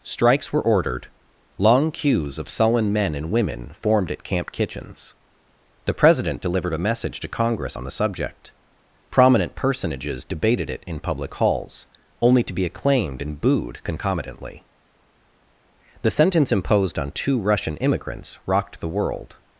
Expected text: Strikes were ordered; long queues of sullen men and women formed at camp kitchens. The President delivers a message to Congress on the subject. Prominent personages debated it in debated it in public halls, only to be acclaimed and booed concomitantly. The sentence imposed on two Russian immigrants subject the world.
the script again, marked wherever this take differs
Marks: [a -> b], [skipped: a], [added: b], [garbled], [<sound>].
Strikes were ordered; long queues of sullen men and women formed at camp kitchens. The President [delivers -> delivered] a message to Congress on the subject. Prominent personages debated it in [skipped: debated it in] public halls, only to be acclaimed and booed concomitantly. The sentence imposed on two Russian immigrants [subject -> rocked] the world.